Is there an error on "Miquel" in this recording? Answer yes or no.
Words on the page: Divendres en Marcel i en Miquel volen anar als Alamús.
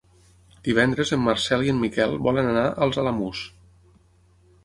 no